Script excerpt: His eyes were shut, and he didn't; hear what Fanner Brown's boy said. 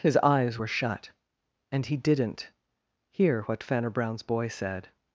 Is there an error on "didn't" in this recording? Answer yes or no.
no